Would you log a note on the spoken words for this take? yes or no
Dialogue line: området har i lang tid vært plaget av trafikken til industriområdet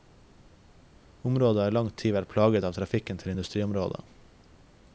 no